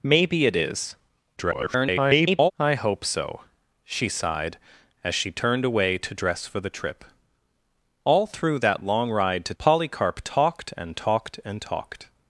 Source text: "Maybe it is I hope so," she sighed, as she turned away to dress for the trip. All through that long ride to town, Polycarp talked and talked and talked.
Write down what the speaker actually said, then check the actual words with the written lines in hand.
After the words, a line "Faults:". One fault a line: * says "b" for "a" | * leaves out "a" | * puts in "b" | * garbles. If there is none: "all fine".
"Maybe it is [garbled] I hope so," she sighed, as she turned away to dress for the trip. All through that long ride to Polycarp talked and talked and talked.
Faults:
* garbles
* leaves out "town"